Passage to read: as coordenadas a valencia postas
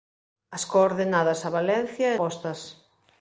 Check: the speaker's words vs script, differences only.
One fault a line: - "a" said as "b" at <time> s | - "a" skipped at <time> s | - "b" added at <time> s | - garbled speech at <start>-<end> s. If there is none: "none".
none